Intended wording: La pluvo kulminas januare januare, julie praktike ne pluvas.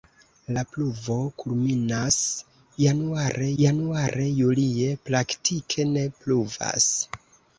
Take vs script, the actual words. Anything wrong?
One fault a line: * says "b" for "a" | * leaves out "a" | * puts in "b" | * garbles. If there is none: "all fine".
all fine